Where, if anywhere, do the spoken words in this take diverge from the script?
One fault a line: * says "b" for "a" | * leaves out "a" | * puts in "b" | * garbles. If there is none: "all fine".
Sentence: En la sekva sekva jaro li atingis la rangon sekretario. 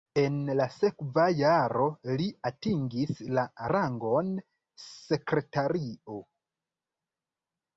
* leaves out "sekva"